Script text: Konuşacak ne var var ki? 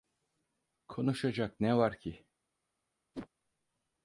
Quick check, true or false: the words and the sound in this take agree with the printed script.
false